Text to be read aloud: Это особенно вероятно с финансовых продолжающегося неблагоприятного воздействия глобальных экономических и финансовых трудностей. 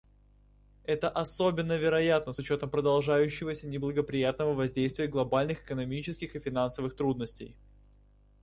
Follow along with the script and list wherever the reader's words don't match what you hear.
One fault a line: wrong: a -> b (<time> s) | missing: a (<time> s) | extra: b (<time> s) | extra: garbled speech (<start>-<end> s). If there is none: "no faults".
wrong: финансовых -> учетом (2.4 s)